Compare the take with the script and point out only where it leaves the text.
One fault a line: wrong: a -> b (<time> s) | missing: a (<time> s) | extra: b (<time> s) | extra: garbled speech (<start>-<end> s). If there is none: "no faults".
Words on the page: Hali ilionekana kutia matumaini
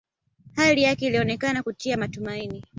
extra: yake (0.8 s)